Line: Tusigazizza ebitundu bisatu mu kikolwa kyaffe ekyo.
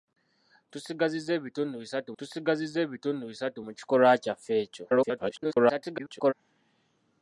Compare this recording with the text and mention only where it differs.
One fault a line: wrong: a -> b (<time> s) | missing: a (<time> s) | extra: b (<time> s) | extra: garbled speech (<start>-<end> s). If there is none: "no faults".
extra: tusigazizza ebitundu bisatu (2.2 s)
extra: garbled speech (4.9-6.3 s)